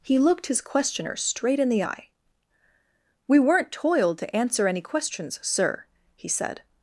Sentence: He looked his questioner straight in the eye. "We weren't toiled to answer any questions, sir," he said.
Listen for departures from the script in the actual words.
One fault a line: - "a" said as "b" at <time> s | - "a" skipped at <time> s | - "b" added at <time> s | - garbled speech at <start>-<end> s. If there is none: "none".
none